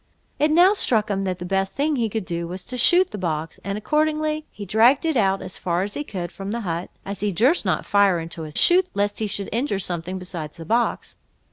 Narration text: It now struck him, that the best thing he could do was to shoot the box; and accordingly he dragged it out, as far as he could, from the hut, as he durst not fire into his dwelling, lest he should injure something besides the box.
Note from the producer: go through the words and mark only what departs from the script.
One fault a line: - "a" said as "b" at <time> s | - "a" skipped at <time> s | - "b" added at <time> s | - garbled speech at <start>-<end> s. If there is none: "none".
- "dwelling" said as "shoot" at 8.5 s